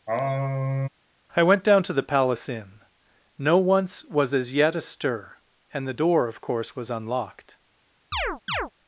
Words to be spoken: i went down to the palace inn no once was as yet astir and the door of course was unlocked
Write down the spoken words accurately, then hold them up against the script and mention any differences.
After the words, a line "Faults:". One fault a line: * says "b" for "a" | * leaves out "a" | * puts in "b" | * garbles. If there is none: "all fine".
i went down to the palace inn no once was as yet astir and the door of course was unlocked
Faults:
all fine